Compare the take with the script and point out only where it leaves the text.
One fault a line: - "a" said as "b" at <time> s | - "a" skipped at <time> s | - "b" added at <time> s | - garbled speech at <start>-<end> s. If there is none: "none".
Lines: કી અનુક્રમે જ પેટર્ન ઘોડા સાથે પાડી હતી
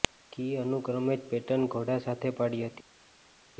none